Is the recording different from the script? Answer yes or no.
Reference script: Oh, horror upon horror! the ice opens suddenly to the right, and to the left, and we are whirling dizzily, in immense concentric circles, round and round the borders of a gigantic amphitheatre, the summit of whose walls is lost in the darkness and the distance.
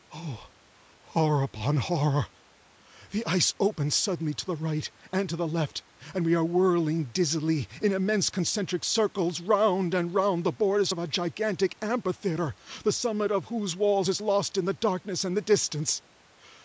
no